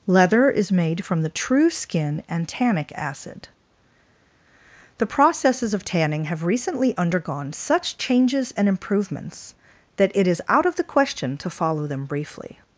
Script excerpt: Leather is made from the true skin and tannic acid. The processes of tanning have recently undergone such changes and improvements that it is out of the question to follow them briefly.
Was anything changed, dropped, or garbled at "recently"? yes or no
no